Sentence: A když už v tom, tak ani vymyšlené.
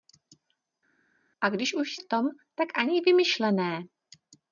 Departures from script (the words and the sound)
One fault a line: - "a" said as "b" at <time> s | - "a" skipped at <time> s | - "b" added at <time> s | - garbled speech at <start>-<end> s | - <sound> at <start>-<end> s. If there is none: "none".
none